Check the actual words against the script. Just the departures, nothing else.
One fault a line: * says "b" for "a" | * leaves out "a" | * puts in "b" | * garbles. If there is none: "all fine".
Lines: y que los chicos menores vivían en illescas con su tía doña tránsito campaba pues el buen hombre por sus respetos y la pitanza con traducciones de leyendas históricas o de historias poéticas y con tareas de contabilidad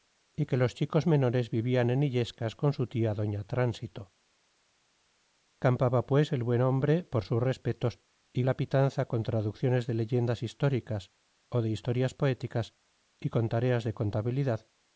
all fine